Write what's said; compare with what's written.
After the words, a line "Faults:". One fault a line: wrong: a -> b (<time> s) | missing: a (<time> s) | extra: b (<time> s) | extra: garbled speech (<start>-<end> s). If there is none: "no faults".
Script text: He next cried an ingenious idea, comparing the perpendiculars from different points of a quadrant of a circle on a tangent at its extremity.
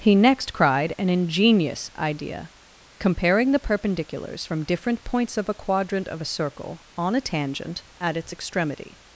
He next cried an ingenious idea, comparing the perpendiculars from different points of a quadrant of a circle on a tangent at its extremity.
Faults:
no faults